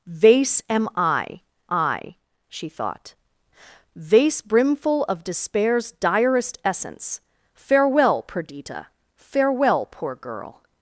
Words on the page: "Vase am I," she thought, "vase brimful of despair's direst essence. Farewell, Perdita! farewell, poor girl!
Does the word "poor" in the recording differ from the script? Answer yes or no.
no